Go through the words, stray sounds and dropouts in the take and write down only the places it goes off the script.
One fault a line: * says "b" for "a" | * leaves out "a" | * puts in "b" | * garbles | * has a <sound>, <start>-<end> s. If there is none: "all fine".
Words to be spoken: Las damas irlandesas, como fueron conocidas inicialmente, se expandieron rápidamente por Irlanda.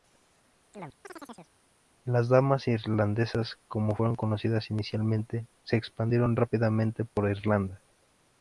* has a chirp, 0.7-1.5 s